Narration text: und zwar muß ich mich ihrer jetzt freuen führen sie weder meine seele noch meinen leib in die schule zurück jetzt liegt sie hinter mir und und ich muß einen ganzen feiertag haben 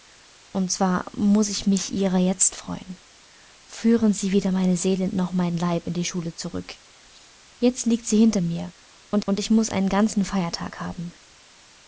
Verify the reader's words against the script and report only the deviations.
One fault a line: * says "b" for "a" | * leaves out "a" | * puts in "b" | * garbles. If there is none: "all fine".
all fine